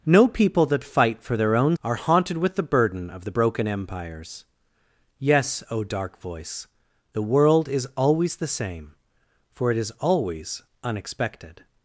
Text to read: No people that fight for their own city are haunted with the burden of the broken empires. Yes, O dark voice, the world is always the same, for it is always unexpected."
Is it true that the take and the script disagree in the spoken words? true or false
true